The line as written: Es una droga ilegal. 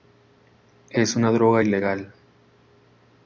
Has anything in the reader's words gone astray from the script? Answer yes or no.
no